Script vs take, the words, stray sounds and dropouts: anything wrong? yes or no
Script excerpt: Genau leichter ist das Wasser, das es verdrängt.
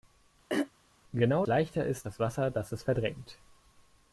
yes